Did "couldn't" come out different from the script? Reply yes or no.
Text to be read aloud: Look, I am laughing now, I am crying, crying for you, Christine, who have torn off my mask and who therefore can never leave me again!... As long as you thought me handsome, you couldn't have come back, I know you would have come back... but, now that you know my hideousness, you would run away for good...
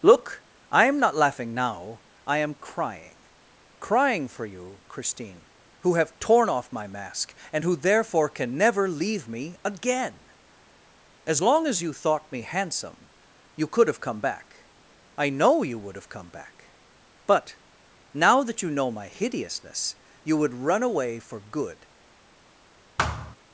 yes